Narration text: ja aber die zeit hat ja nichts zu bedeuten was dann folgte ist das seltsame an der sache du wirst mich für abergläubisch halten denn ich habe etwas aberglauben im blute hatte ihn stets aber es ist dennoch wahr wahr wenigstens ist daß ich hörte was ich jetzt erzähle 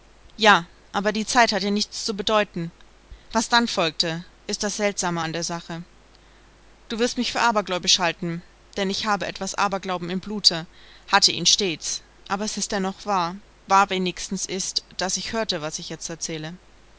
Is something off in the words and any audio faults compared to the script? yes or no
no